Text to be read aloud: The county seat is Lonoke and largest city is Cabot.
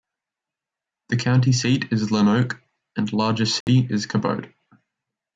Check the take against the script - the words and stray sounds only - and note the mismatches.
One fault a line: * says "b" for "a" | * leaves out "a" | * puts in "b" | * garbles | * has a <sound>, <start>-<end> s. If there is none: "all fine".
* has a dropout, 3.6-3.7 s